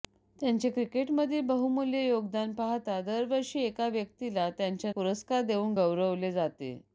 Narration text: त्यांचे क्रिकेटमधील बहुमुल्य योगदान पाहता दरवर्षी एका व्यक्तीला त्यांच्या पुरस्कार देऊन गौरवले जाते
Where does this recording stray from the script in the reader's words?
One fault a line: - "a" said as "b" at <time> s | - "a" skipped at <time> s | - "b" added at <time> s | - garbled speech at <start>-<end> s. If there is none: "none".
none